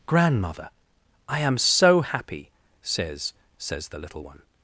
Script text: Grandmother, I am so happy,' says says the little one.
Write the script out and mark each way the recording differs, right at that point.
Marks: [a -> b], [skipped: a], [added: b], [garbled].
Grandmother, I am so happy,' says says the little one.